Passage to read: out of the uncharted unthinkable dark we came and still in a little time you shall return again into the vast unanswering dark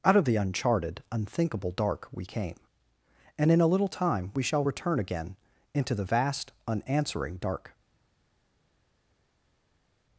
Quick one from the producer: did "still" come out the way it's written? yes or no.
no